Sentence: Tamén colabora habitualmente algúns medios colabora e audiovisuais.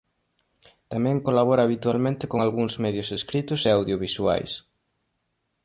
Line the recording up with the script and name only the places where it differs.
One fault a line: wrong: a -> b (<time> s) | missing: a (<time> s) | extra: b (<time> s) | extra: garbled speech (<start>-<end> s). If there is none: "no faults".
extra: con (2.3 s)
wrong: colabora -> escritos (3.2 s)